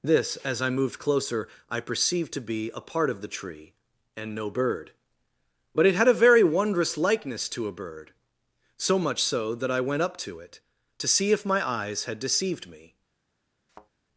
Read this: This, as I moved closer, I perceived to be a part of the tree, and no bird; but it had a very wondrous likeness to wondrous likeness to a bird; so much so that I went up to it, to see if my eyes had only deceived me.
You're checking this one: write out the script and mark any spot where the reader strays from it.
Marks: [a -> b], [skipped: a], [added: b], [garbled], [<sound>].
This, as I moved closer, I perceived to be a part of the tree, and no bird; but it had a very wondrous likeness to [skipped: wondrous likeness to] a bird; so much so that I went up to it, to see if my eyes had [skipped: only] deceived me. [thud]